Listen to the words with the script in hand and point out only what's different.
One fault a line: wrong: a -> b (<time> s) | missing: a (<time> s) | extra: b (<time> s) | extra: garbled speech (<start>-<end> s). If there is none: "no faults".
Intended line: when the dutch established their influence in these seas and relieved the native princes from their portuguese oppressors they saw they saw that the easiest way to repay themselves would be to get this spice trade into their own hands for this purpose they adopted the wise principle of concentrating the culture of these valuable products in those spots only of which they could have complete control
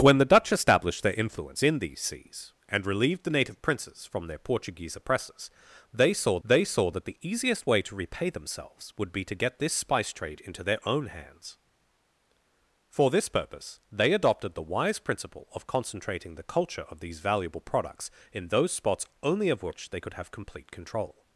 no faults